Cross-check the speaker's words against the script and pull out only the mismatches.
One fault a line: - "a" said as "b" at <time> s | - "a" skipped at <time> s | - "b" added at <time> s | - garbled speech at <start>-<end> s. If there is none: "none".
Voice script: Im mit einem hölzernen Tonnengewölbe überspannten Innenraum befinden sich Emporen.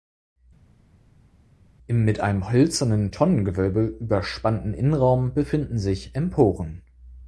none